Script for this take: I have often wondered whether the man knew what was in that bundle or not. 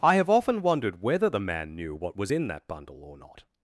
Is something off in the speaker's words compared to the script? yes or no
no